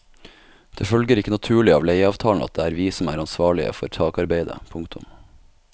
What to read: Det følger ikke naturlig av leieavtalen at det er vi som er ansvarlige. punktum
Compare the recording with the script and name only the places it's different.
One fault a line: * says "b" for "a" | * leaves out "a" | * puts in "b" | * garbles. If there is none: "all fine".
* puts in "for takarbeidet"